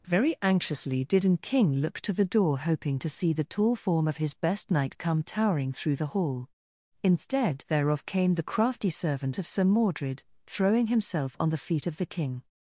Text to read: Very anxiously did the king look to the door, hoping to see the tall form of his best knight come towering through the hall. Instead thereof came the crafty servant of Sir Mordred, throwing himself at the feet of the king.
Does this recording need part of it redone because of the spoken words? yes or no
yes